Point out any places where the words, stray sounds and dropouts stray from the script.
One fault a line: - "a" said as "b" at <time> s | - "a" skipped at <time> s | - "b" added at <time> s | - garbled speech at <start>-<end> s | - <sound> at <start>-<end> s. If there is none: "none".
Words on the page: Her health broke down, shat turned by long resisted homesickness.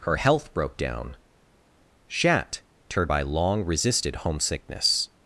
none